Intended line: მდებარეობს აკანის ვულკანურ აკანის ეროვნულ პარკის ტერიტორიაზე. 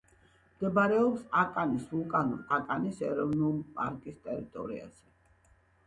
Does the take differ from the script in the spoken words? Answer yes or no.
no